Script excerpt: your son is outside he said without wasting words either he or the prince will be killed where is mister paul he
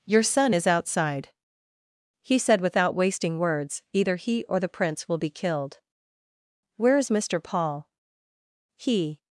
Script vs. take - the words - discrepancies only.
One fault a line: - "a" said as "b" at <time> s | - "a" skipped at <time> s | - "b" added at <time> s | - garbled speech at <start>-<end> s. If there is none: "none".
none